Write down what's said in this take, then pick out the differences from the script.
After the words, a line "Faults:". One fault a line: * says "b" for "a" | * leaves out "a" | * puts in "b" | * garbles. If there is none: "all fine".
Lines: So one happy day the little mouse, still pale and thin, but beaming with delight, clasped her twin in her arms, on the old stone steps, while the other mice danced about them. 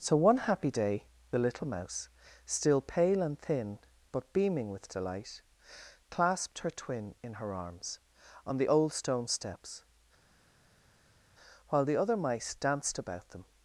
So one happy day the little mouse, still pale and thin, but beaming with delight, clasped her twin in her arms, on the old stone steps, while the other mice danced about them.
Faults:
all fine